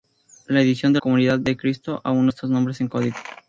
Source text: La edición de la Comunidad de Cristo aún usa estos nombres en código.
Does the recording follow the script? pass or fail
fail